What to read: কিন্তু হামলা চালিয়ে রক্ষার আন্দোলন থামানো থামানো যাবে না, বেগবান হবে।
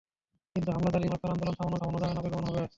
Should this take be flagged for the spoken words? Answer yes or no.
no